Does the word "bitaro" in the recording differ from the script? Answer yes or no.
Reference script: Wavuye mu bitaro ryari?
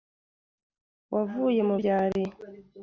yes